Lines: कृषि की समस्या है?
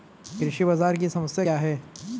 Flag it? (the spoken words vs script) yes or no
yes